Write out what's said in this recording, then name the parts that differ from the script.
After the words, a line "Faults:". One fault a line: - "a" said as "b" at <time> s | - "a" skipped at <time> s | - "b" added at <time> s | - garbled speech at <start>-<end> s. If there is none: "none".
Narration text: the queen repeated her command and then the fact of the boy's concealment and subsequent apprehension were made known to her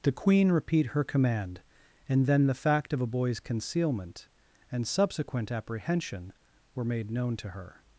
the queen repeat her command and then the fact of a boy's concealment and subsequent apprehension were made known to her
Faults:
- "repeated" said as "repeat" at 0.5 s
- "the" said as "a" at 3.0 s